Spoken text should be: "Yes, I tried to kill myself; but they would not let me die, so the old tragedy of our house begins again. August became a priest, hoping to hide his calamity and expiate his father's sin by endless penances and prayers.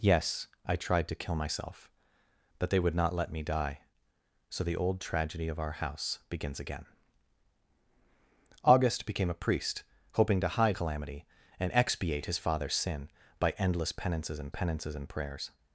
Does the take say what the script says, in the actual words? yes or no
no